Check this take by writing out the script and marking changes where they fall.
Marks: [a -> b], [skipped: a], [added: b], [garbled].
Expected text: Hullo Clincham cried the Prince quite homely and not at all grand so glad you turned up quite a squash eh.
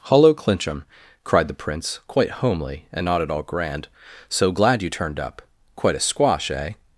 Hullo Clincham cried the Prince quite homely and not at all grand so glad you turned up quite a squash eh.